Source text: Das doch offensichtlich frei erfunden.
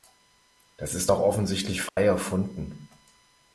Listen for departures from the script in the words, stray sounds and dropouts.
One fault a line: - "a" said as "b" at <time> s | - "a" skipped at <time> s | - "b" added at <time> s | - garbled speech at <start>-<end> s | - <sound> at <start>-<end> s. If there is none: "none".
- "ist" added at 0.9 s
- dropout at 1.9-2.0 s